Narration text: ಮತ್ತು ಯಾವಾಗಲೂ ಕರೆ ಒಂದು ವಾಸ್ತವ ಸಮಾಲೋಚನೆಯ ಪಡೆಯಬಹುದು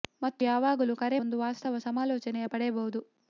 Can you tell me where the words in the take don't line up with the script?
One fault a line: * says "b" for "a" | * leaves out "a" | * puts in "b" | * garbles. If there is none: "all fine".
all fine